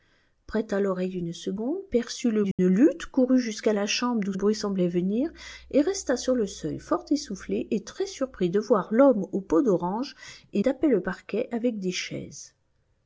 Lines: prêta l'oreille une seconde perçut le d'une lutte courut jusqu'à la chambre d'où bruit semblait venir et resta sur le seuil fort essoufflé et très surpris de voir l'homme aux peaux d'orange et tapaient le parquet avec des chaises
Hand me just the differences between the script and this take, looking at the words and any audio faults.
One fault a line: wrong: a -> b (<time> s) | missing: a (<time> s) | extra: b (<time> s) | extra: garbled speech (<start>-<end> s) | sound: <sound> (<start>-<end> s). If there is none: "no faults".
sound: dropout (2.5-2.6 s)